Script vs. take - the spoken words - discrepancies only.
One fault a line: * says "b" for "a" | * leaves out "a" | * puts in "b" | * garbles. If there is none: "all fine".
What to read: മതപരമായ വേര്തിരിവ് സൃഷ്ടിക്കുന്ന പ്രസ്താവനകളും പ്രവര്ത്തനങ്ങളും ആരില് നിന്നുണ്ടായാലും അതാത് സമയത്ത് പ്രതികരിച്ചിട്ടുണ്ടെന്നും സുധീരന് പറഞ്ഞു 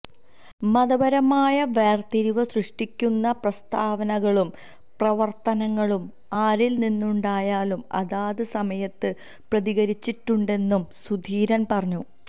all fine